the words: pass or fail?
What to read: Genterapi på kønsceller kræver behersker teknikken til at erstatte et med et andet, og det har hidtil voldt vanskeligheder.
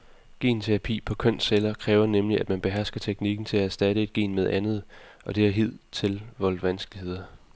fail